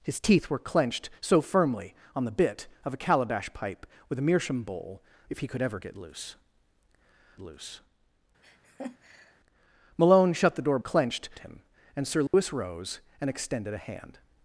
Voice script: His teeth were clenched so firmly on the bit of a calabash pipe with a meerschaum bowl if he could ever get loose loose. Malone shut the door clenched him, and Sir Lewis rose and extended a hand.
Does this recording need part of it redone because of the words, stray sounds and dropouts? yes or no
yes